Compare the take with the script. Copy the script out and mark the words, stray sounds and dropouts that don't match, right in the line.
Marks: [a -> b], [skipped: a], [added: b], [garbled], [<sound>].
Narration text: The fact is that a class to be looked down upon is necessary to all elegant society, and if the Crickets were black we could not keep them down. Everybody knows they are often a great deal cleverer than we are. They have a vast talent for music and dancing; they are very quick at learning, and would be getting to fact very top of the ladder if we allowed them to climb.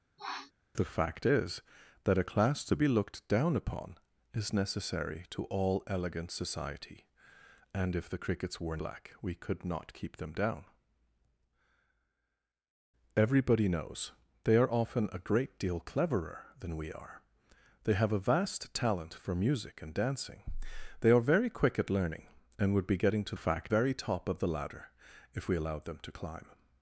[sniff] The fact is that a class to be looked down upon is necessary to all elegant society, and if the Crickets were black we could not keep them down. Everybody knows they are often a great deal cleverer than we are. They have a vast talent for music and dancing; they are very quick at learning, and would be getting to fact very top of the ladder if we allowed them to climb.